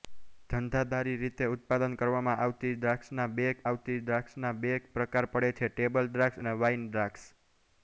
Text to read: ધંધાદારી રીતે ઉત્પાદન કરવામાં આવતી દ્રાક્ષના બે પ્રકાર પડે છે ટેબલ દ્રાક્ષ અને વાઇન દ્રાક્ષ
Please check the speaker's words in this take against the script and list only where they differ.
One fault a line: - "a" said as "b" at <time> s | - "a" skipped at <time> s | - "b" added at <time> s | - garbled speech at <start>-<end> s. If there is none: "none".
- "આવતી દ્રાક્ષના બે" added at 3.7 s